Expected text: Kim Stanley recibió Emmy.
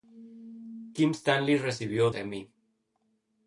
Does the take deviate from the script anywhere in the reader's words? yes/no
no